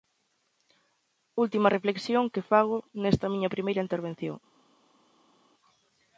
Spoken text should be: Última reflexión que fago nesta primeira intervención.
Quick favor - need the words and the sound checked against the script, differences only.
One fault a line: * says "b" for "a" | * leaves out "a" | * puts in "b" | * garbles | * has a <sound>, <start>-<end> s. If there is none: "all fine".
* puts in "miña"